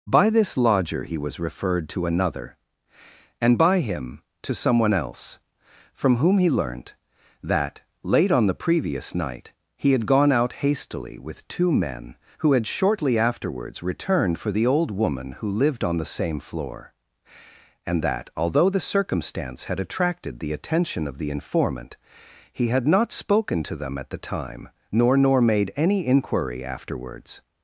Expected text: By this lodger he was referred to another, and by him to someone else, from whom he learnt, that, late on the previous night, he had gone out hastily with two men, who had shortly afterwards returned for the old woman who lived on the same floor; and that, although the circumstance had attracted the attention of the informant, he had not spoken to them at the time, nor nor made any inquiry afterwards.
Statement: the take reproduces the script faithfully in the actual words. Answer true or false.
true